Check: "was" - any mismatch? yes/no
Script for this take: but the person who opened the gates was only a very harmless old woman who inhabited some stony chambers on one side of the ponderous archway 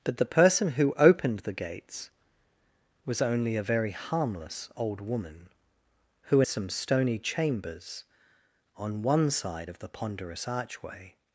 no